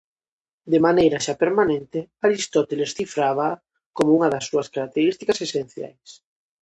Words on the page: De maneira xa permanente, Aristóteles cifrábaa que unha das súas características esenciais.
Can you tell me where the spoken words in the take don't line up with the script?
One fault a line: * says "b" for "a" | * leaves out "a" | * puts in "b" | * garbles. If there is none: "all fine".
* says "como" for "que"